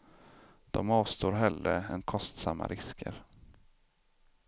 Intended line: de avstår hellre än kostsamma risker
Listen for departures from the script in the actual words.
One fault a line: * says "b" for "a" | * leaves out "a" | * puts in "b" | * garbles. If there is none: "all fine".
all fine